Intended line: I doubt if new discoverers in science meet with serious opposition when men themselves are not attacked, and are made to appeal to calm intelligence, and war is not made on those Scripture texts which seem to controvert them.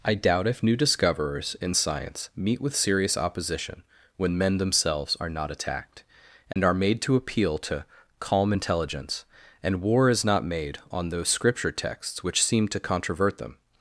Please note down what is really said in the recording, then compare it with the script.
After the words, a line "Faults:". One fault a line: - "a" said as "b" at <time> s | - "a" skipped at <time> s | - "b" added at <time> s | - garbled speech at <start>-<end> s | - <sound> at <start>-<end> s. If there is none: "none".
I doubt if new discoverers in science meet with serious opposition when men themselves are not attacked, and are made to appeal to calm intelligence, and war is not made on those Scripture texts which seem to controvert them.
Faults:
- dropout at 6.5-6.6 s